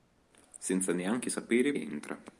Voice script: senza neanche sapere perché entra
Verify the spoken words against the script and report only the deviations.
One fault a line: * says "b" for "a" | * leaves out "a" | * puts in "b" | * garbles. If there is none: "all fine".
* leaves out "perché"